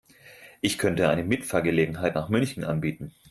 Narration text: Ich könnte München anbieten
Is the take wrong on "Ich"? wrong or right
right